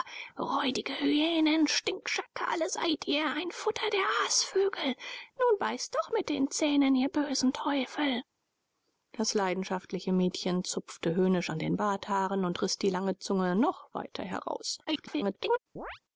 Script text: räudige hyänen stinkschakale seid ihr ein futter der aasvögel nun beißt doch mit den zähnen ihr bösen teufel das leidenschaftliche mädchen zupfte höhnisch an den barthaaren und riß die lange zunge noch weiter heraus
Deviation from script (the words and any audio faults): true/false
true